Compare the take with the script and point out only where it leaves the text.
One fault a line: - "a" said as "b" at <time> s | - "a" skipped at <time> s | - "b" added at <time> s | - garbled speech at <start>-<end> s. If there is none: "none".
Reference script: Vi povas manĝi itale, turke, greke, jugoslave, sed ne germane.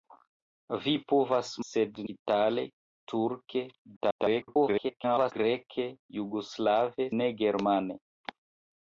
- "manĝi" said as "sed" at 1.7 s
- garbled speech at 4.0-5.3 s
- "sed" skipped at 7.1 s